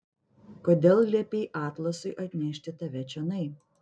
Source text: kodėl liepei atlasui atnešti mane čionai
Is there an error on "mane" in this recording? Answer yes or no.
yes